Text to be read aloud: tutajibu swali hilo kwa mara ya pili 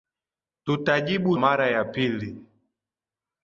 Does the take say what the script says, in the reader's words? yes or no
no